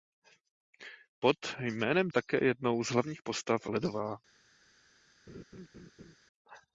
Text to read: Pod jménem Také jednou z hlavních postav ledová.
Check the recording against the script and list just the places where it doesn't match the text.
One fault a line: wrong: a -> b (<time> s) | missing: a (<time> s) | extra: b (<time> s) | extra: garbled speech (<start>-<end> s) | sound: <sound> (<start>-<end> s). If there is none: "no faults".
sound: laugh (5.3-6.2 s)